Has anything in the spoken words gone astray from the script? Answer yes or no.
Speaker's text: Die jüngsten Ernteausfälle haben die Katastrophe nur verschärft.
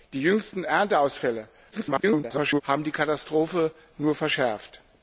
yes